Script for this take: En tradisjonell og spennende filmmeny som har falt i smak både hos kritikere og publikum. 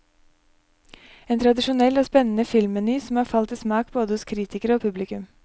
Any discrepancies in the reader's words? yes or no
no